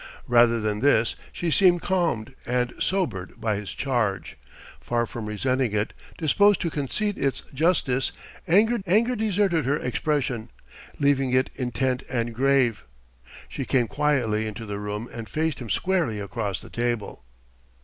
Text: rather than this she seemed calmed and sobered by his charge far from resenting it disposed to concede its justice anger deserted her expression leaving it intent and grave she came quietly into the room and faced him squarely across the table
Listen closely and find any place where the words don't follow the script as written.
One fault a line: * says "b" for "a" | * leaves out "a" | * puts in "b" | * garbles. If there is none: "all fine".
* puts in "anger"